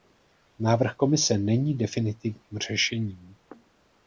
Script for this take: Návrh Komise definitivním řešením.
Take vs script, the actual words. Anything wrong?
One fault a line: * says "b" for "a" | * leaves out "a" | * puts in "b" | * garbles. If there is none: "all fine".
* puts in "není"